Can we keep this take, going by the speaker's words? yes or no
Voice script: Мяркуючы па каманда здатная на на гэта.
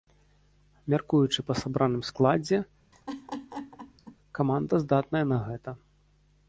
no